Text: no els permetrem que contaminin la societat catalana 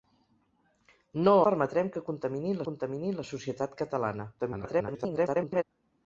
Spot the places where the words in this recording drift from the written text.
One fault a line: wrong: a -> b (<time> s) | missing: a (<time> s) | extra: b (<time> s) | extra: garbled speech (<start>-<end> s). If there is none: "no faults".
missing: els (1.4 s)
extra: contaminin (2.7 s)
extra: garbled speech (4.4-5.6 s)